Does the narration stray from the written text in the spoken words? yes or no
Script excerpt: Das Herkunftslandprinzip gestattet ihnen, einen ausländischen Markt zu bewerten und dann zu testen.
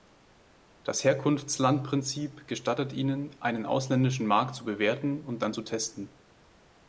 no